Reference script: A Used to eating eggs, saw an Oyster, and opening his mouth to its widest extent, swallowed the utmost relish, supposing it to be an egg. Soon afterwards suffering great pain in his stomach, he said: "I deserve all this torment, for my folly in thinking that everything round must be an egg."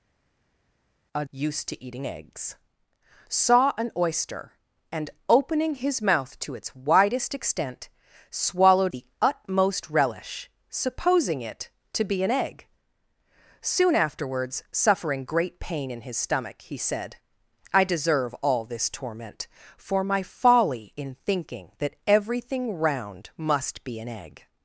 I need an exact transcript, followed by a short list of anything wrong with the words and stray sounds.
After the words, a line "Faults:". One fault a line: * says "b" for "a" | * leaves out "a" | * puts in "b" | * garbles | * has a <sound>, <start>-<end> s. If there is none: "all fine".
A Used to eating eggs, saw an Oyster, and opening his mouth to its widest extent, swallowed the utmost relish, supposing it to be an egg. Soon afterwards suffering great pain in his stomach, he said: "I deserve all this torment, for my folly in thinking that everything round must be an egg."
Faults:
all fine